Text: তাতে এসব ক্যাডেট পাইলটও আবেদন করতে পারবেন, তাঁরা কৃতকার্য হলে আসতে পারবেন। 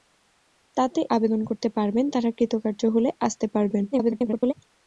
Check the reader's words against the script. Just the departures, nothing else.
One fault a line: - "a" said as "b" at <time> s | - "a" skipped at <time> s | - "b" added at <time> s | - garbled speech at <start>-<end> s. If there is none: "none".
- "এসব ক্যাডেট পাইলটও" skipped at 1.0 s
- garbled speech at 3.9-4.5 s